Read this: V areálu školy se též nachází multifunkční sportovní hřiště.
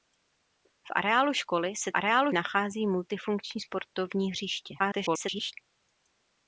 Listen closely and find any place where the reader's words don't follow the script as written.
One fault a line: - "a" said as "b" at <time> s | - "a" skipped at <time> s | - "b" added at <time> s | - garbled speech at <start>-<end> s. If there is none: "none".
- "též" said as "areálu" at 1.9 s
- garbled speech at 4.8-5.5 s